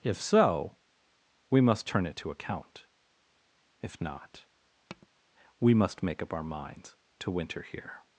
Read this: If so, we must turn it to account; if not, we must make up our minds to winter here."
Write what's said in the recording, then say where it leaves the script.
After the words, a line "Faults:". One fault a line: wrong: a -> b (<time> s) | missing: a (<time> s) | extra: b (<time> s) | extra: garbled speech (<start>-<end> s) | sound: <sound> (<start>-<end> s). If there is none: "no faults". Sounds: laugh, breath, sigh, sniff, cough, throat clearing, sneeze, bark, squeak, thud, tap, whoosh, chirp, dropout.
If so, we must turn it to account; if not, we must make up our minds to winter here."
Faults:
sound: tap (4.9-5.1 s)